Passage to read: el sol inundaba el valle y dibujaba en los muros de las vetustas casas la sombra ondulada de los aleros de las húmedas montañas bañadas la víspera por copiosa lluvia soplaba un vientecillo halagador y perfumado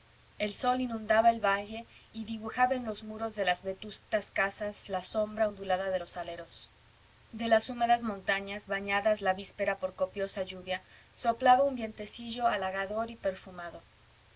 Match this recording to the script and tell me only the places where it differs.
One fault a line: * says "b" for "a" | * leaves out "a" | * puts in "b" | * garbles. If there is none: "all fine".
all fine